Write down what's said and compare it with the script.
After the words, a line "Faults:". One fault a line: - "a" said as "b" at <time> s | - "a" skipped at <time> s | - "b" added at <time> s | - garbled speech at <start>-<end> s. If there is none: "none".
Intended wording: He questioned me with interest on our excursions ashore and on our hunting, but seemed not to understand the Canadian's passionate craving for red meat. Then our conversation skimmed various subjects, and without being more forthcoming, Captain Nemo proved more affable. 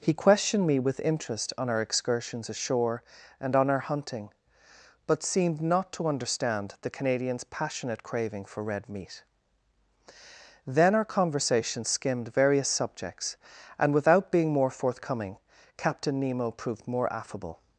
He questioned me with interest on our excursions ashore and on our hunting, but seemed not to understand the Canadian's passionate craving for red meat. Then our conversation skimmed various subjects, and without being more forthcoming, Captain Nemo proved more affable.
Faults:
none